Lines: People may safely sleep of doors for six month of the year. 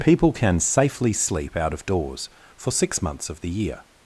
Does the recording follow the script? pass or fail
fail